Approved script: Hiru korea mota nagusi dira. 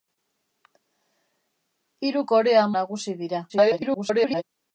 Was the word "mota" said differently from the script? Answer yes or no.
yes